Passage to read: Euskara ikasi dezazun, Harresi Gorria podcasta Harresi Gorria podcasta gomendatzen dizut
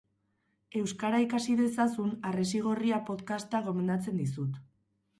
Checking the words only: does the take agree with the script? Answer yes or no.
no